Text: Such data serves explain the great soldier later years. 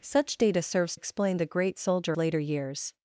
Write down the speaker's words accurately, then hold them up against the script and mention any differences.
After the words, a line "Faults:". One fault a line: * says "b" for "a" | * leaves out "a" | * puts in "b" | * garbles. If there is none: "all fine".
Such data serves explain the great soldier later years.
Faults:
all fine